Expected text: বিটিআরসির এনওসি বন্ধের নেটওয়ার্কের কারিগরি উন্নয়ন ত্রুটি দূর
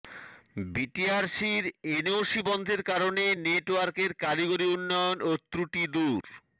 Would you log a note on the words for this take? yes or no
yes